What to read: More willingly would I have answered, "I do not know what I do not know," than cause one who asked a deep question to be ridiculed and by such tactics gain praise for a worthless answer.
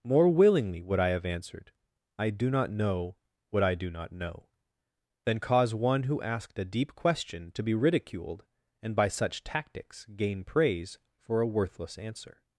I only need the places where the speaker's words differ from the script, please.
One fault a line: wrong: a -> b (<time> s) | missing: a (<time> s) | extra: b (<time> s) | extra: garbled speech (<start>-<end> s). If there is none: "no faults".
no faults